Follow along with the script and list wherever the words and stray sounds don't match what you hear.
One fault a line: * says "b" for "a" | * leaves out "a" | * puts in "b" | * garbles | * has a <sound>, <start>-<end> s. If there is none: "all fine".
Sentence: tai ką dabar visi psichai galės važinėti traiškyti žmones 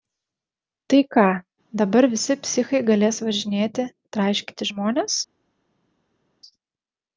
all fine